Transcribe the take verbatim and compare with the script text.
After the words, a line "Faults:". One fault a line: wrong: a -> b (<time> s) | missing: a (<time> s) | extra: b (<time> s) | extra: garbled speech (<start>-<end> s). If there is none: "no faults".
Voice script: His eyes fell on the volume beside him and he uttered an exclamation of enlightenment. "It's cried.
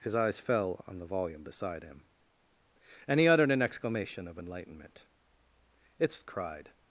His eyes fell on the volume beside him and he uttered an exclamation of enlightenment. "It's cried.
Faults:
no faults